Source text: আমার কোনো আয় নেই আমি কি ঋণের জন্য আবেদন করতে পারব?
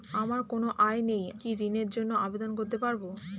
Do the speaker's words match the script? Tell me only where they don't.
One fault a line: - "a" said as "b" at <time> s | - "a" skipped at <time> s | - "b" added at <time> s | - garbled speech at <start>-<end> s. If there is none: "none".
- "আমি" skipped at 1.2 s